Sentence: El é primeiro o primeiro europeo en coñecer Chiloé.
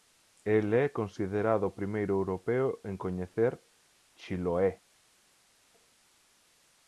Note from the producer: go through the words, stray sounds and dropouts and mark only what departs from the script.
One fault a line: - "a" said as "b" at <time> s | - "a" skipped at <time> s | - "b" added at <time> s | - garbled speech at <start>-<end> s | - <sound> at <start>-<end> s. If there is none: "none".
- "primeiro" said as "considerado" at 0.9 s